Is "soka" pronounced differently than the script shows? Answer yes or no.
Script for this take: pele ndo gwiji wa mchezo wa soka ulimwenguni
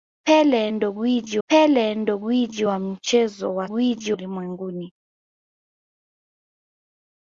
yes